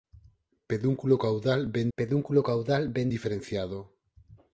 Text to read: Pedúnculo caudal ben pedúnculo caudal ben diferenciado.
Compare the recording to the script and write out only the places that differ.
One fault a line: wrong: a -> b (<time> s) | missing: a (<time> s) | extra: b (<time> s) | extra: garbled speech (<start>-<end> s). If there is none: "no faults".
no faults